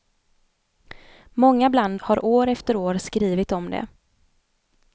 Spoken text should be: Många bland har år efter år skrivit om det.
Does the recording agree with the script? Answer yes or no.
yes